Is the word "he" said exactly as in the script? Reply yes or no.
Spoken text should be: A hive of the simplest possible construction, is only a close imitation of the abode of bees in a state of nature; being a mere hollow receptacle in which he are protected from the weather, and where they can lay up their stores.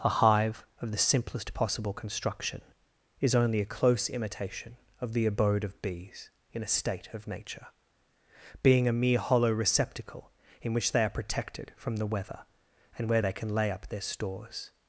no